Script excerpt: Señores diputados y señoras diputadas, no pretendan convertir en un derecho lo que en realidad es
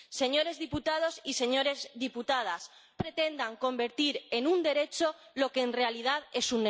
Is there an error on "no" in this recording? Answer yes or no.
yes